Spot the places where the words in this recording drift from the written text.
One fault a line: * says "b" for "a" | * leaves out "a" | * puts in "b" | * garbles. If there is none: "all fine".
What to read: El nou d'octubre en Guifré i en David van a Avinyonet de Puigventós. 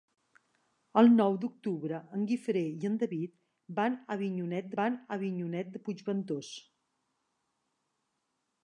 * puts in "van a Avinyonet"